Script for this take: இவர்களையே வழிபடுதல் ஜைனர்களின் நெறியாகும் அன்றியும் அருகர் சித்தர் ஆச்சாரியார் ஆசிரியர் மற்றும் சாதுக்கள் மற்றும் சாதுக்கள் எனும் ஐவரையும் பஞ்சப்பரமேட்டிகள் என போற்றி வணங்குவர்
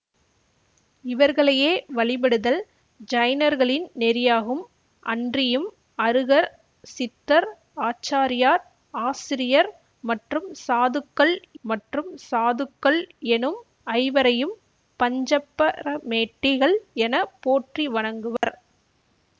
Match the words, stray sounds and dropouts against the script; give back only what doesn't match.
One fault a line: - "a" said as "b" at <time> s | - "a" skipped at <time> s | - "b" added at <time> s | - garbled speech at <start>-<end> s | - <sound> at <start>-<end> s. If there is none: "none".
- dropout at 18.4-18.4 s